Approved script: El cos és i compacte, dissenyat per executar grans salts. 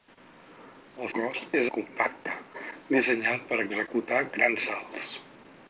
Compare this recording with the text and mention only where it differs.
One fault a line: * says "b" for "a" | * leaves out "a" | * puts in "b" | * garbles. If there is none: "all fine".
all fine